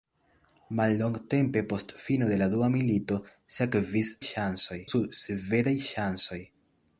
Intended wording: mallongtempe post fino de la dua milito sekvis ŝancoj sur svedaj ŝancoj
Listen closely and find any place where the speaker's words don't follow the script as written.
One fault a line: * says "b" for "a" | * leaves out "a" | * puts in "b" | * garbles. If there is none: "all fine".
all fine